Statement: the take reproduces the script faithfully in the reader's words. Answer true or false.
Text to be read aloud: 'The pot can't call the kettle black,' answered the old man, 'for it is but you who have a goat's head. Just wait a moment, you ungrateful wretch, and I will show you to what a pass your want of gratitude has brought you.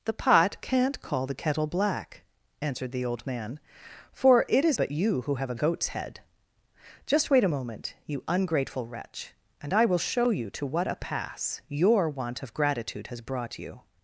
true